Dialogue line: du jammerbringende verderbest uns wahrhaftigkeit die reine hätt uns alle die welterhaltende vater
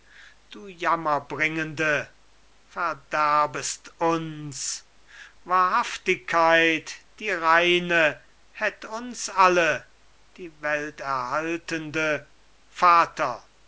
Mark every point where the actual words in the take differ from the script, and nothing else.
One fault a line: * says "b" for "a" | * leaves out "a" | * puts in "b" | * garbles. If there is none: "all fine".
all fine